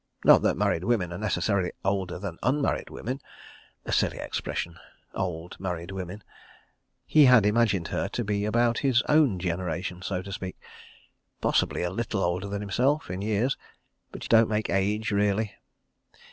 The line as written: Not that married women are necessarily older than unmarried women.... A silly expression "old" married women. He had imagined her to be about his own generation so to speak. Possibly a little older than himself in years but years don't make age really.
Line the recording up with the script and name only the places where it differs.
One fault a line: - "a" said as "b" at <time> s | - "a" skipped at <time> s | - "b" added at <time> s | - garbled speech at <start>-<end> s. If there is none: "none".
- "years" skipped at 14.3 s